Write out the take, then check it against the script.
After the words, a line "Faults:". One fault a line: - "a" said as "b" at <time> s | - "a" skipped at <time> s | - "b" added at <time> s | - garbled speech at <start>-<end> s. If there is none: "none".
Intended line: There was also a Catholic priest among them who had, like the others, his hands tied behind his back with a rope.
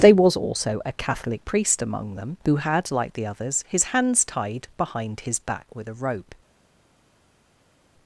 There was also a Catholic priest among them who had, like the others, his hands tied behind his back with a rope.
Faults:
none